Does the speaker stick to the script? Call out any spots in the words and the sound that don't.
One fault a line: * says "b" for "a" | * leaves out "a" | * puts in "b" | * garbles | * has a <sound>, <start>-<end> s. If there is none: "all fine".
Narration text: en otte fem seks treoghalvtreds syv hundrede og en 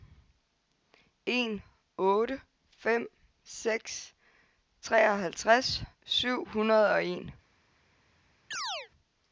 * has a chirp, 8.5-8.9 s